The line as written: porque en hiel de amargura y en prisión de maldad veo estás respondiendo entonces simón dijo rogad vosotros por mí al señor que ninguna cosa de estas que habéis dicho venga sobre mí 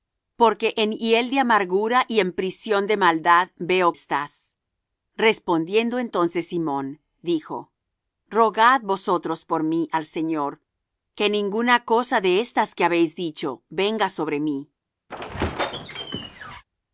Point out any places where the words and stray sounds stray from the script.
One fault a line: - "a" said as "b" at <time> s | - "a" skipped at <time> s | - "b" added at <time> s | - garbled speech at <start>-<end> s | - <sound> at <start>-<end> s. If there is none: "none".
- squeak at 15.1-16.6 s